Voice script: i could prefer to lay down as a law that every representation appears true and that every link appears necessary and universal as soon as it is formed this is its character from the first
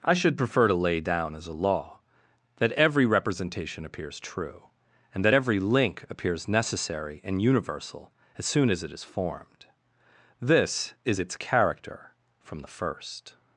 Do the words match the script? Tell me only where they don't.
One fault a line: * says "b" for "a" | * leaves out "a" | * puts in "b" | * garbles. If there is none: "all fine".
* says "should" for "could"